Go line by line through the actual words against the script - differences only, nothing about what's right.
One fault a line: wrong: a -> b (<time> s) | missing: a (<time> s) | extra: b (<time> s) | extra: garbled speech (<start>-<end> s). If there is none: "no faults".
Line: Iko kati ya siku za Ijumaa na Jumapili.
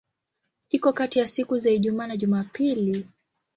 no faults